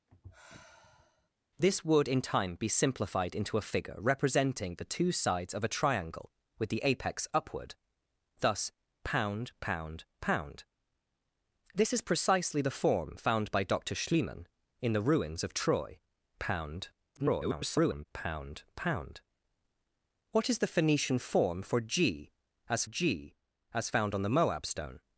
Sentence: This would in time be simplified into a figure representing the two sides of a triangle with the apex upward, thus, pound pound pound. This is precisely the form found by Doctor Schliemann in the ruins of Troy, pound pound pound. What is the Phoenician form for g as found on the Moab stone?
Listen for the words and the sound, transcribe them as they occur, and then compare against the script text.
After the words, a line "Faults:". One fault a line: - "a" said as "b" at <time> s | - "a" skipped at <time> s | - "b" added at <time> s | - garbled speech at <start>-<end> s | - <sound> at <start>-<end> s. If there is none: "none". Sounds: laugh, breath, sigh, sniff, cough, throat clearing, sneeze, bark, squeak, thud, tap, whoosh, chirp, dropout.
This would in time be simplified into a figure representing the two sides of a triangle with the apex upward, thus, pound pound pound. This is precisely the form found by Doctor Schliemann in the ruins of Troy, pound [garbled] pound pound. What is the Phoenician form for g as g as found on the Moab stone?
Faults:
- sigh at 0.1-1.3 s
- garbled speech at 17.2-18.1 s
- "g as" added at 22.8 s